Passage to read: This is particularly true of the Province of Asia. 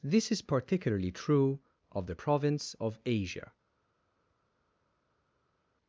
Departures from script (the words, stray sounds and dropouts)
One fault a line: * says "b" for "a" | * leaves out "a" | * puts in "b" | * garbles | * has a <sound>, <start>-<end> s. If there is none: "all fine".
all fine